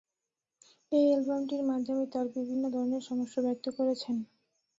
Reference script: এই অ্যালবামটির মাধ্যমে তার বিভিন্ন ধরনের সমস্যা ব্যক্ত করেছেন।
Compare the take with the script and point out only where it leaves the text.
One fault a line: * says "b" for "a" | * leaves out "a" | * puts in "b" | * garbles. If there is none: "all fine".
all fine